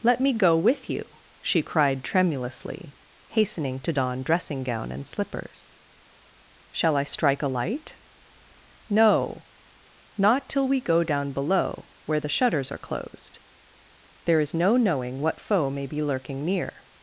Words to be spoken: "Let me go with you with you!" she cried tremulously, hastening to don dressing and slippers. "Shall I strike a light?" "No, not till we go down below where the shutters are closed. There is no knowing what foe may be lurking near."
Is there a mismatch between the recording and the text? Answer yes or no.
yes